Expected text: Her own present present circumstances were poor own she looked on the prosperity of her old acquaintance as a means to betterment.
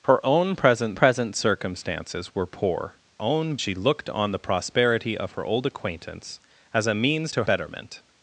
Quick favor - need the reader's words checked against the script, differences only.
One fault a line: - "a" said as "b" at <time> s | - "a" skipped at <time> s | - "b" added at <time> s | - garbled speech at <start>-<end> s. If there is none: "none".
none